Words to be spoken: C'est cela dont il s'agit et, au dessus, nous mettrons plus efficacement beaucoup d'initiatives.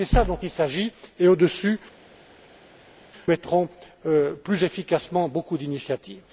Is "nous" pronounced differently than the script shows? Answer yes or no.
yes